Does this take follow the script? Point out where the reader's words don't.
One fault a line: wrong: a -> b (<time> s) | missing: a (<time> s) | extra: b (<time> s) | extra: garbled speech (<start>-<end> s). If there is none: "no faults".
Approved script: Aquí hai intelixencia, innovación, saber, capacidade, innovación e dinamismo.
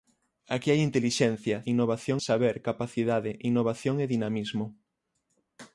no faults